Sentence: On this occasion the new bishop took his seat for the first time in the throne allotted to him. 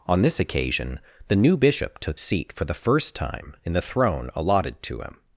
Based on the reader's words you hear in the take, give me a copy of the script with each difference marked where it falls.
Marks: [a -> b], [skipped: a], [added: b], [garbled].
On this occasion the new bishop took [skipped: his] seat for the first time in the throne allotted to him.